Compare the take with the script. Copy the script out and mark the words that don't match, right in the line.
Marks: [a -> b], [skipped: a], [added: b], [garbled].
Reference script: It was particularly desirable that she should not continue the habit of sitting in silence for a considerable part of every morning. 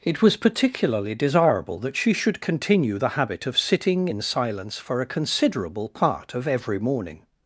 It was particularly desirable that she should [skipped: not] continue the habit of sitting in silence for a considerable part of every morning.